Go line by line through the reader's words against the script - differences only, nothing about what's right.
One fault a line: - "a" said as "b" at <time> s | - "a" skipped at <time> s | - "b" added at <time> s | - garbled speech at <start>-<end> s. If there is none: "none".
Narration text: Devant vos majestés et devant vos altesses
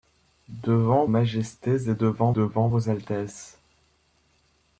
- "vos" skipped at 1.1 s
- "devant" added at 2.3 s